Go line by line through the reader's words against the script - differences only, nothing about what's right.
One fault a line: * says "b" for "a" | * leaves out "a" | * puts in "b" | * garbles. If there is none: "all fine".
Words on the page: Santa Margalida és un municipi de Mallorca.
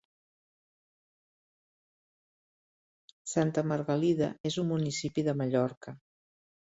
all fine